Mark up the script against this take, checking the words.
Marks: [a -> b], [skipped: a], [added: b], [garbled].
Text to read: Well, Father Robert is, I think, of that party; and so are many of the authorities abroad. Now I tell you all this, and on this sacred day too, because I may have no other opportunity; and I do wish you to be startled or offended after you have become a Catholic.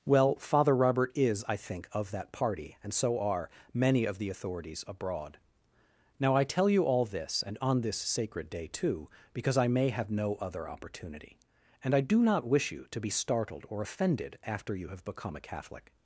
Well, Father Robert is, I think, of that party; and so are many of the authorities abroad. Now I tell you all this, and on this sacred day too, because I may have no other opportunity; and I do [added: not] wish you to be startled or offended after you have become a Catholic.